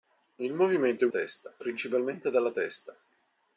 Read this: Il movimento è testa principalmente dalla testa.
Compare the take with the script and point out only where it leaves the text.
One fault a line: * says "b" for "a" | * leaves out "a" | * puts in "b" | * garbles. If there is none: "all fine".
all fine